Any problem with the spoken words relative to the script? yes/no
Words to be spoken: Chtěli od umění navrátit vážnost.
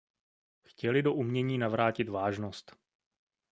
yes